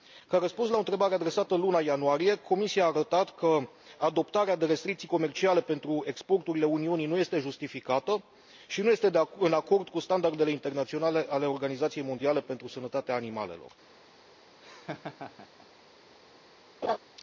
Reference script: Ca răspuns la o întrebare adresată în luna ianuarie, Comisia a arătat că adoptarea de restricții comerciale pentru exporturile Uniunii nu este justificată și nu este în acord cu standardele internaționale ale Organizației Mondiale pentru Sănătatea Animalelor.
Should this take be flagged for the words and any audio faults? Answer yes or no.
yes